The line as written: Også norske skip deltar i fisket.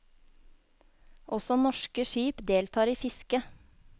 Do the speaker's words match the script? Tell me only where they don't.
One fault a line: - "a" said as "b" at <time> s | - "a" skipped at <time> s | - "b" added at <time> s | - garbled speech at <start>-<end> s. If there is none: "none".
none